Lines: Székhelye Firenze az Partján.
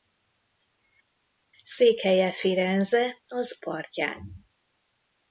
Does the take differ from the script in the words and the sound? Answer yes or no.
no